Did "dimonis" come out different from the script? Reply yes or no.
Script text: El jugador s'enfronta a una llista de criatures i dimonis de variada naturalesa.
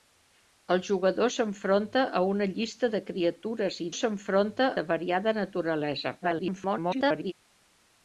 yes